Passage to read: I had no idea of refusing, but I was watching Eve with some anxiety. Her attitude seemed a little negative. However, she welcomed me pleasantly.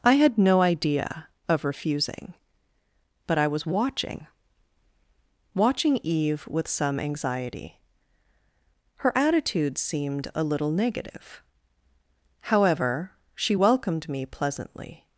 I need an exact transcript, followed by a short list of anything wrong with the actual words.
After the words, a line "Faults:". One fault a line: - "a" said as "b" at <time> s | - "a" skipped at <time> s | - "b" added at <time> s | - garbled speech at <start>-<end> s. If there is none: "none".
I had no idea of refusing, but I was watching watching Eve with some anxiety. Her attitude seemed a little negative. However, she welcomed me pleasantly.
Faults:
- "watching" added at 5.5 s